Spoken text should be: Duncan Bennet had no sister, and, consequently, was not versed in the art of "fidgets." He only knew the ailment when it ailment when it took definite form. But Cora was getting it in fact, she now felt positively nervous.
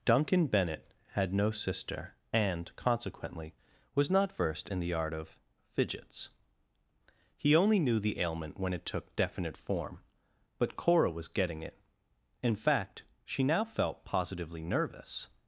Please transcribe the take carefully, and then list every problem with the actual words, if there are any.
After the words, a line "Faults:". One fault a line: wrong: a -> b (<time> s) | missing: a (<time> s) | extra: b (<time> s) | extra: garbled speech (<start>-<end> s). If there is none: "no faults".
Duncan Bennet had no sister, and, consequently, was not versed in the art of "fidgets." He only knew the ailment when it took definite form. But Cora was getting it in fact, she now felt positively nervous.
Faults:
missing: ailment when it (8.8 s)